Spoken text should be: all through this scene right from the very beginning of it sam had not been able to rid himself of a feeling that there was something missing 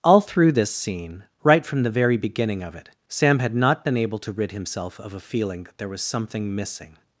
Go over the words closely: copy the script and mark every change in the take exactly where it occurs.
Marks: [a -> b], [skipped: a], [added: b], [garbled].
all through this scene right from the very beginning of it sam had not been able to rid himself of a feeling that there was something missing